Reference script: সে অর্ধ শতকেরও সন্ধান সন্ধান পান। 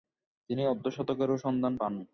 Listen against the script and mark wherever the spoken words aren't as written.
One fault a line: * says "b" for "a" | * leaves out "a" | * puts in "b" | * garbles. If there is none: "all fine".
* says "তিনি" for "সে"
* leaves out "সন্ধান"